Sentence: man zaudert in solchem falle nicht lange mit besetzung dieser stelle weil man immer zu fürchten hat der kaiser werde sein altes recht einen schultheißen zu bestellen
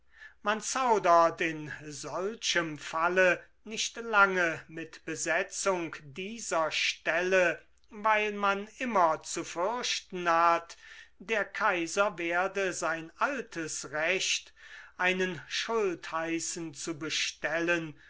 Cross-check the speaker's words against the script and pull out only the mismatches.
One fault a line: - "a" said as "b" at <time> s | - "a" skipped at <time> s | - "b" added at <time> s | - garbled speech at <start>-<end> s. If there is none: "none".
none